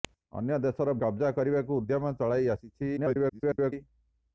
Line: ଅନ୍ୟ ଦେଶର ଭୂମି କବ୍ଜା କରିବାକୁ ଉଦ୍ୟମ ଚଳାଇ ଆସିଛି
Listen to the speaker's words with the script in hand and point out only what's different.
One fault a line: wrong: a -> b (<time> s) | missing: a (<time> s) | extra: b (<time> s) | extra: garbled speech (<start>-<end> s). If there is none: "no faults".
missing: ଭୂମି (0.9 s)
extra: garbled speech (3.0-3.7 s)